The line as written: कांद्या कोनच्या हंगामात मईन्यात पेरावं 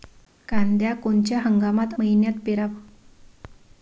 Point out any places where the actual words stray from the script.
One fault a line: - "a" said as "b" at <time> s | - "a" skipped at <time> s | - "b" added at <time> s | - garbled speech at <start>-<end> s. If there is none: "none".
none